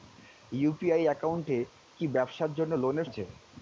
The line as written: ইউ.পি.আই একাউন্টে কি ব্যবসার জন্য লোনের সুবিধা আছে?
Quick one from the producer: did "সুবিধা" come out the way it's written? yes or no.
no